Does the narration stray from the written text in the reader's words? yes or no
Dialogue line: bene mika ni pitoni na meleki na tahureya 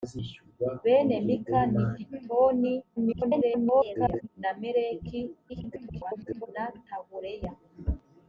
yes